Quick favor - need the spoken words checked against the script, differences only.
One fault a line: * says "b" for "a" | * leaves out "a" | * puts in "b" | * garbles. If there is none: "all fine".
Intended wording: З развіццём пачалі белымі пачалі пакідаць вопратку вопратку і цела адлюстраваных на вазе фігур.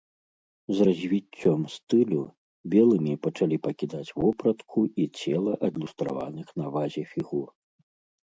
* says "стылю" for "пачалі"
* leaves out "вопратку"